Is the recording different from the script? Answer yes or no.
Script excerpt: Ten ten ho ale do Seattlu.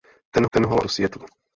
no